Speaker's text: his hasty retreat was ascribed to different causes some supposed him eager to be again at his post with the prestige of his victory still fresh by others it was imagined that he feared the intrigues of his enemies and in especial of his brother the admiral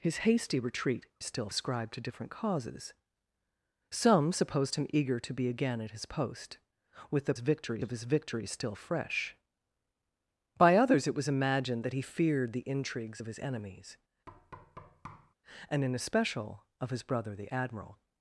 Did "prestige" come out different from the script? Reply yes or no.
yes